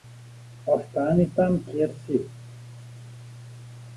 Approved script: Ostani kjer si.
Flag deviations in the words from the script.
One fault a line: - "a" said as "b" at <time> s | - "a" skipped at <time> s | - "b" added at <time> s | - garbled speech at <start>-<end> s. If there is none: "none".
- "tam" added at 1.4 s